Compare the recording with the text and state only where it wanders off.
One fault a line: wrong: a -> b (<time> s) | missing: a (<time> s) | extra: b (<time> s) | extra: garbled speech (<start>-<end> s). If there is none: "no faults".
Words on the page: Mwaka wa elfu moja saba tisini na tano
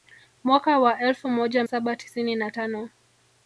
no faults